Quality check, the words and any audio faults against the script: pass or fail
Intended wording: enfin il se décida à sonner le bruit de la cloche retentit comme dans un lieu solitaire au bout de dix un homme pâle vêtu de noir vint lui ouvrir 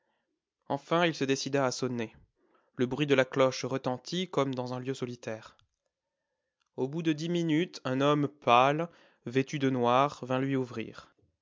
fail